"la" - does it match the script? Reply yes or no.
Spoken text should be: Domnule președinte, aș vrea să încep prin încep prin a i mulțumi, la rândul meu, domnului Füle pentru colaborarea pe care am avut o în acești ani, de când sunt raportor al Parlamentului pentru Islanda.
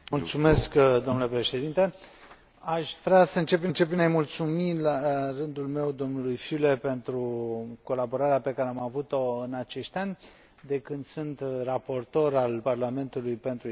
yes